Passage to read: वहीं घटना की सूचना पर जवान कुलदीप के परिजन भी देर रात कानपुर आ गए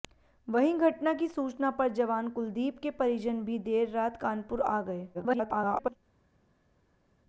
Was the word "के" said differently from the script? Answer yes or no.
no